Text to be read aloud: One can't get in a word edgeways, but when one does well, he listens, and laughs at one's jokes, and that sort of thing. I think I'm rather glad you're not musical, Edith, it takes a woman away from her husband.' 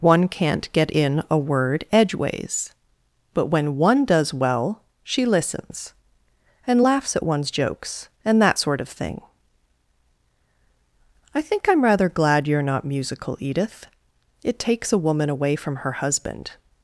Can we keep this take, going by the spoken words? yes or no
no